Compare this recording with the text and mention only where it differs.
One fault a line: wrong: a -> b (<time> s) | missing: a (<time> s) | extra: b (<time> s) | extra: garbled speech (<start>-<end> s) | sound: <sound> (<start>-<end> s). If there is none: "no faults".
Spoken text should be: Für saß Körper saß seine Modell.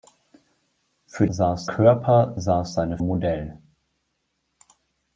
no faults